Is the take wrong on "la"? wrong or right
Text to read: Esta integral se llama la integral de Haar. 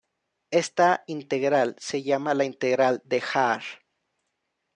right